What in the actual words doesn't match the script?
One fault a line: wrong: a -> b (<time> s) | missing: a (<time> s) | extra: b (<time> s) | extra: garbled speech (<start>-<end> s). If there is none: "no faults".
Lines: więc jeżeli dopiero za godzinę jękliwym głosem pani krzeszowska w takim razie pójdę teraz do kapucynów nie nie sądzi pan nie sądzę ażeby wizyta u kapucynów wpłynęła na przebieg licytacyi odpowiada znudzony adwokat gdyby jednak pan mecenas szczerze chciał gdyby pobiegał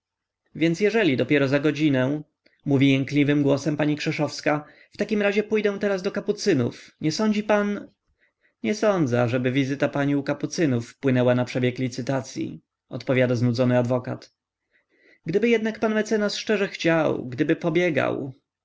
extra: mówi (2.6 s)
missing: nie (7.1 s)
extra: pani (9.9 s)